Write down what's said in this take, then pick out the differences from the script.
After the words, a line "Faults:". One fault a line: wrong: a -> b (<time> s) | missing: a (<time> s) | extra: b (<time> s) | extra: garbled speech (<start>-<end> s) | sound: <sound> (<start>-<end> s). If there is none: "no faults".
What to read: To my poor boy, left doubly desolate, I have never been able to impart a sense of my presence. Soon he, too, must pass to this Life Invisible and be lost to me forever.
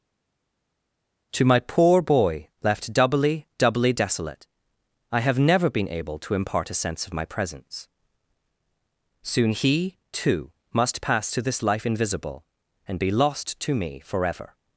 To my poor boy, left doubly doubly desolate, I have never been able to impart a sense of my presence. Soon he, too, must pass to this Life Invisible and be lost to me forever.
Faults:
extra: doubly (3.6 s)